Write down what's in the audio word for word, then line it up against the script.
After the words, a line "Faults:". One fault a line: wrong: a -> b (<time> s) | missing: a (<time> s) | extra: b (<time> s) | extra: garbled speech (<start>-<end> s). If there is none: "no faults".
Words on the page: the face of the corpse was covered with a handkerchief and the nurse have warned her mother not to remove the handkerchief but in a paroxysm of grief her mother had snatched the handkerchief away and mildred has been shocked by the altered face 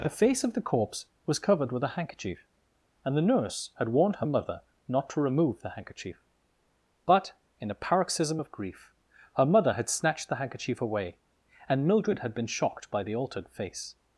the face of the corpse was covered with a handkerchief and the nurse had warned her mother not to remove the handkerchief but in a paroxysm of grief her mother had snatched the handkerchief away and mildred had been shocked by the altered face
Faults:
wrong: have -> had (3.8 s)
wrong: has -> had (12.2 s)